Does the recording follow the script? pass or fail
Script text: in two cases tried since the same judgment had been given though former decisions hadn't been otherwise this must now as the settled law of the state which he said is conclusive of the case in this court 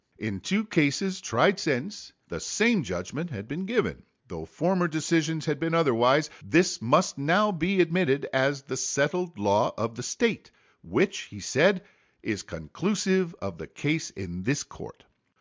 fail